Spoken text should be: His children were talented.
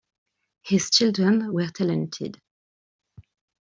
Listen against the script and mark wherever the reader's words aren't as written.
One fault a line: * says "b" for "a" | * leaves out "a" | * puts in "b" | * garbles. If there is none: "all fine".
all fine